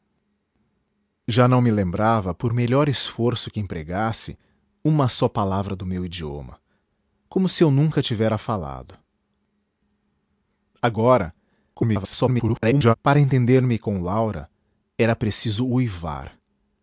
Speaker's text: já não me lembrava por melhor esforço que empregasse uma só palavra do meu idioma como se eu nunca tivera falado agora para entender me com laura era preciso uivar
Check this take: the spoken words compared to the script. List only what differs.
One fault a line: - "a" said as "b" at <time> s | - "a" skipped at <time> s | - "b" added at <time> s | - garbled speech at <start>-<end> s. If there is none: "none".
- garbled speech at 11.7-12.9 s